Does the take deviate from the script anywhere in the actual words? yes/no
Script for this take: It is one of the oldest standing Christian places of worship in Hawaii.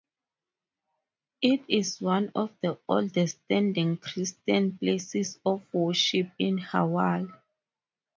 no